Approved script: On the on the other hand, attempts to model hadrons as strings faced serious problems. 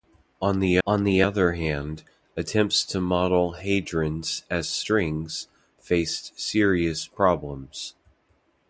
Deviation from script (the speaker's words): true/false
false